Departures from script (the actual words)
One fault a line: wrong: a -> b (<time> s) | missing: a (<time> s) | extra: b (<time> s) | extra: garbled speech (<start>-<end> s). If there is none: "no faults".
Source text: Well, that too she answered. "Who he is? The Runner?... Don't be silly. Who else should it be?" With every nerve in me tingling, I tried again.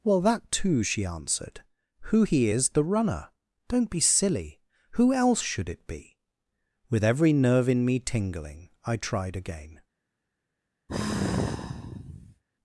no faults